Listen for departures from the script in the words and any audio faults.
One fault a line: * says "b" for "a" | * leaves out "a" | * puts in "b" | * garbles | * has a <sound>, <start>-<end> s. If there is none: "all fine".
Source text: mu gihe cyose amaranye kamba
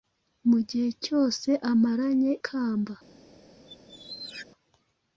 * has a squeak, 3.7-4.5 s